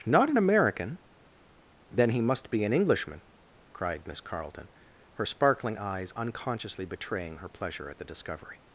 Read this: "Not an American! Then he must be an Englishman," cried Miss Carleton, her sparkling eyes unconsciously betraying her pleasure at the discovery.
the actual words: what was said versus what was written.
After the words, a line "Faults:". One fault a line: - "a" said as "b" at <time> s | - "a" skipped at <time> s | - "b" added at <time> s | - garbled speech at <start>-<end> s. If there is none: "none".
"Not an American! Then he must be an Englishman," cried Miss Carleton, her sparkling eyes unconsciously betraying her pleasure at the discovery.
Faults:
none